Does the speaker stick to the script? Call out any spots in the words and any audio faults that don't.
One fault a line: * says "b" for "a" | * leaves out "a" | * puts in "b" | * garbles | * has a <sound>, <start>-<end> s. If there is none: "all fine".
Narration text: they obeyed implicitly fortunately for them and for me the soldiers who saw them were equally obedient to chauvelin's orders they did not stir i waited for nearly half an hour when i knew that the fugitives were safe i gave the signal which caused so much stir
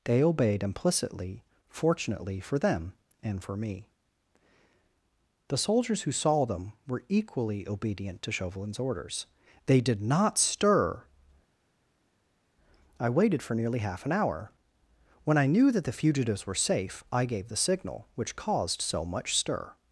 all fine